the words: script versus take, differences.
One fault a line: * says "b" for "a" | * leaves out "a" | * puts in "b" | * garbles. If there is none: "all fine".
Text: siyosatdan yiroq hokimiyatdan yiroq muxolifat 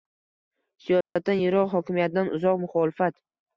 * says "uzoq" for "yiroq"